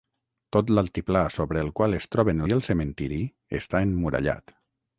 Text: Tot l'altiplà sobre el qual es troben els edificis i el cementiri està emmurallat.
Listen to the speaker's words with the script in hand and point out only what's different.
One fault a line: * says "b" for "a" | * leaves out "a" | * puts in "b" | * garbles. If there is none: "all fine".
* leaves out "els edificis"